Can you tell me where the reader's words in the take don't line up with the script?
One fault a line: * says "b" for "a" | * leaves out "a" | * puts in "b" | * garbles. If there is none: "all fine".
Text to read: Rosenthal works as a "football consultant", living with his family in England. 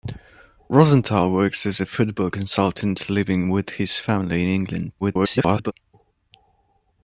* garbles